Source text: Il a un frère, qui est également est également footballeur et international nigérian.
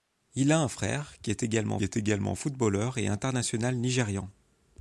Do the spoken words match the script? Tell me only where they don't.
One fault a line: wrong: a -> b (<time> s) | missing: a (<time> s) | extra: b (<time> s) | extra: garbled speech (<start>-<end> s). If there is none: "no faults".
no faults